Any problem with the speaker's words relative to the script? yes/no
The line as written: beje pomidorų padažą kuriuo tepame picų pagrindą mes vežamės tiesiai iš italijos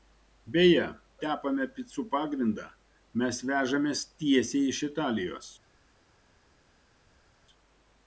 yes